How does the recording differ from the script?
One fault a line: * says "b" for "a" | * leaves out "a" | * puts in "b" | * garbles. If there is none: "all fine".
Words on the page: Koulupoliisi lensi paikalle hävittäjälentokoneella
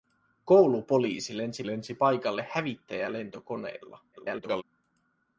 * puts in "lensi"
* garbles